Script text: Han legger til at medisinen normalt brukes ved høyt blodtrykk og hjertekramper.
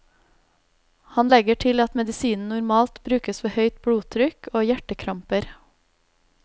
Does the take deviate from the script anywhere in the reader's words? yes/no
no